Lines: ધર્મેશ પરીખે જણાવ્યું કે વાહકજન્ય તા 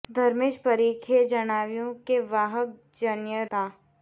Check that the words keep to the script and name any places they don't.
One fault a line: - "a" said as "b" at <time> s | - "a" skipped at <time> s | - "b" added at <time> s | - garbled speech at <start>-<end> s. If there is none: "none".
none